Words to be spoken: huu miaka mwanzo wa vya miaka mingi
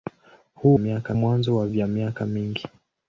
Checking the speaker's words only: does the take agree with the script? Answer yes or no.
yes